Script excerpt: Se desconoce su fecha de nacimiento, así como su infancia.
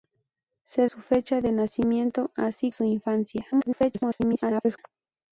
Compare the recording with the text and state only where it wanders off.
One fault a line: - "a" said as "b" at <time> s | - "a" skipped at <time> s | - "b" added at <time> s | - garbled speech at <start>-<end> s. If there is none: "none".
- "desconoce" skipped at 0.9 s
- "como" skipped at 2.7 s
- garbled speech at 3.5-4.8 s